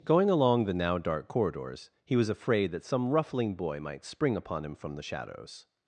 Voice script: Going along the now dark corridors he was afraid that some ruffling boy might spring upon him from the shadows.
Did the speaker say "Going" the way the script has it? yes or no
yes